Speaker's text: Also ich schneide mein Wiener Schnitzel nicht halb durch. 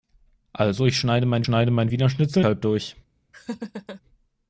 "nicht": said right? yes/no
no